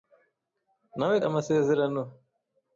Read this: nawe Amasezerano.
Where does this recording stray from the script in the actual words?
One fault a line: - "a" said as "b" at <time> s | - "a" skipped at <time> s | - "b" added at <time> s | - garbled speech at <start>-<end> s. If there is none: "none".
none